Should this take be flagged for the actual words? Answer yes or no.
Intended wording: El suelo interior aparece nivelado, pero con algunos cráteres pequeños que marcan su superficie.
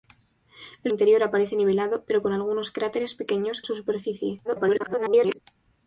yes